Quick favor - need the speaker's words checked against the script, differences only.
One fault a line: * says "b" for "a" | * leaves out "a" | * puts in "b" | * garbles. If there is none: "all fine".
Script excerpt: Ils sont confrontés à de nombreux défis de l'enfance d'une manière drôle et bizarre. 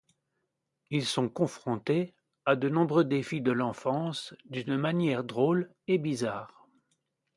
all fine